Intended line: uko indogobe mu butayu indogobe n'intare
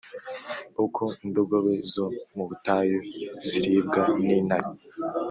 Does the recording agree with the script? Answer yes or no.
no